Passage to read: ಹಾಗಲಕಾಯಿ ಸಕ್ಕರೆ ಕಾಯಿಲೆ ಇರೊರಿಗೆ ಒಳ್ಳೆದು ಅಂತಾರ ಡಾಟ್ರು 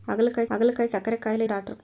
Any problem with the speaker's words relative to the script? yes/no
yes